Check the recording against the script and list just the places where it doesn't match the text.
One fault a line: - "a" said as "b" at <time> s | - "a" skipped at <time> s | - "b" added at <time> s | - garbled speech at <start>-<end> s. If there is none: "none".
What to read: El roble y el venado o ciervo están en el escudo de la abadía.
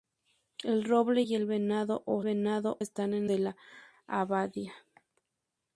- "ciervo" said as "venado" at 2.2 s
- "el escudo" skipped at 3.3 s